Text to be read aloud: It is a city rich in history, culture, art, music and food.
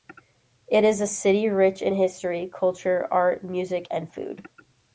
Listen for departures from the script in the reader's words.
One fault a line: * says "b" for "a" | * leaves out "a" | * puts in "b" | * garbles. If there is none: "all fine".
all fine